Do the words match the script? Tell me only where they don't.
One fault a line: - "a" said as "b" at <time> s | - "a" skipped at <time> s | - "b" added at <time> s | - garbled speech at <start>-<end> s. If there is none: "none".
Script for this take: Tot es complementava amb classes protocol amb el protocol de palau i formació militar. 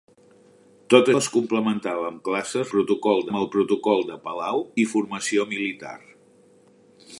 none